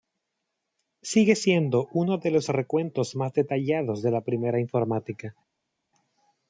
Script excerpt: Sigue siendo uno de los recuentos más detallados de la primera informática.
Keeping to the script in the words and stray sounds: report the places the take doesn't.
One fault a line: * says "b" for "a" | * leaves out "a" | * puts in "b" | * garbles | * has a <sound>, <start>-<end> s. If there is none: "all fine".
all fine